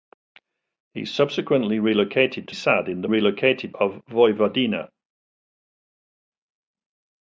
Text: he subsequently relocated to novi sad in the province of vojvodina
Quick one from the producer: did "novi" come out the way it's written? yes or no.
no